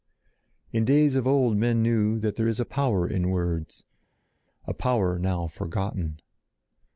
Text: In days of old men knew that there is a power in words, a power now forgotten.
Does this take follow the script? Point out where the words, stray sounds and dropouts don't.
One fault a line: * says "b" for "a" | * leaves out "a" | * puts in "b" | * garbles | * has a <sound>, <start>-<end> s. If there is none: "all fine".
all fine